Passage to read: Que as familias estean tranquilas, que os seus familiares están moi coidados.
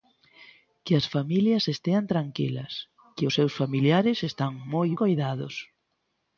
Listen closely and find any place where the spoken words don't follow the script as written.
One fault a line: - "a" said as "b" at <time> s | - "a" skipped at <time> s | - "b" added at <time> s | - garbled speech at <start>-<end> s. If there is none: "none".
none